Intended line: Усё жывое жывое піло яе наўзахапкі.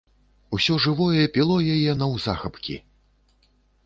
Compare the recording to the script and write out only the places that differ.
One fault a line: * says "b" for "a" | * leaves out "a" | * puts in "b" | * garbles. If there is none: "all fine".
* leaves out "жывое"